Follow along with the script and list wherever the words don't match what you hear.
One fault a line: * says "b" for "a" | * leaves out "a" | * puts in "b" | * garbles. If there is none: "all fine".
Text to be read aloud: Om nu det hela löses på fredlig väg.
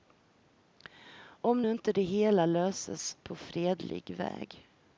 * puts in "inte"